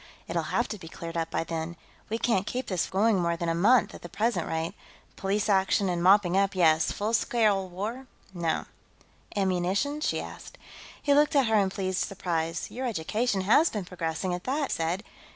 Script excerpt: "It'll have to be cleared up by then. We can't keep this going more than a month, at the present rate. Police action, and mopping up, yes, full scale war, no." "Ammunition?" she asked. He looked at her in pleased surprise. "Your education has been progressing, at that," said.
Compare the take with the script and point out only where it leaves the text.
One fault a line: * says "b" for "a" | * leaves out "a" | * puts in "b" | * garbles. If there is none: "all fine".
all fine